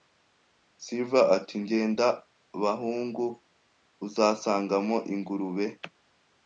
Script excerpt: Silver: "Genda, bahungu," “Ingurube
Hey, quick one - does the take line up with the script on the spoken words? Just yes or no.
no